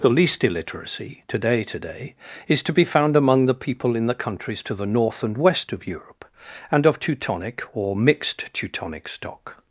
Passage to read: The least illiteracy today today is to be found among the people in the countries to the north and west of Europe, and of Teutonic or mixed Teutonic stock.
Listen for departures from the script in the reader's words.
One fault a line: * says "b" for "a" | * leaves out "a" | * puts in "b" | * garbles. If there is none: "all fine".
all fine